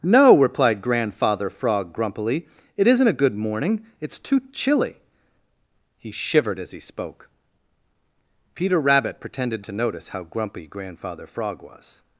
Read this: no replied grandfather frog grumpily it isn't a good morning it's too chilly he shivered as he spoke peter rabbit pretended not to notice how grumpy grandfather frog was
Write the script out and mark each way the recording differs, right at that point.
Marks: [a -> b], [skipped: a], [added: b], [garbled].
no replied grandfather frog grumpily it isn't a good morning it's too chilly he shivered as he spoke peter rabbit pretended [skipped: not] to notice how grumpy grandfather frog was